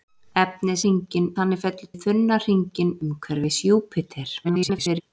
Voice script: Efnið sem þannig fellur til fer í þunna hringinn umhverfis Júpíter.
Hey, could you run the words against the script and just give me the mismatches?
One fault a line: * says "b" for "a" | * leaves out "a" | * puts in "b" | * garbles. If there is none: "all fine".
* says "hringinn" for "sem"
* leaves out "til fer"
* garbles